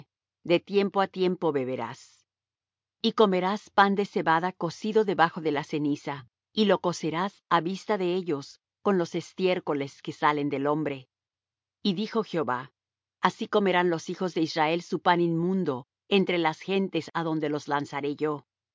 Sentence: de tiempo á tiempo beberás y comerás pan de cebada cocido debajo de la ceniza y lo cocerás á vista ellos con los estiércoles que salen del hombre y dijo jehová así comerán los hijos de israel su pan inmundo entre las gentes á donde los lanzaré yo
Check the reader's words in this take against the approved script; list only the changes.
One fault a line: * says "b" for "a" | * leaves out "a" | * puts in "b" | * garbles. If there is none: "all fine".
* puts in "de"